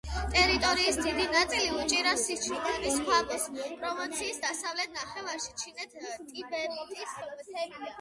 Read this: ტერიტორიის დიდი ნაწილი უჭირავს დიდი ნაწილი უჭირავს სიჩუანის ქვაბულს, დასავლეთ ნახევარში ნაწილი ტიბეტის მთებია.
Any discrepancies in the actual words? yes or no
yes